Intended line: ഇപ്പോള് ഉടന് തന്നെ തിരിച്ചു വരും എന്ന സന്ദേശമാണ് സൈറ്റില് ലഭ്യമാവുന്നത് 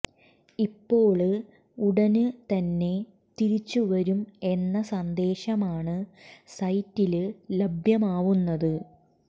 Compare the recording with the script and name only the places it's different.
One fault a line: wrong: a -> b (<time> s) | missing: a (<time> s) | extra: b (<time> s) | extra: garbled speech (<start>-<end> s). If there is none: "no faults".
no faults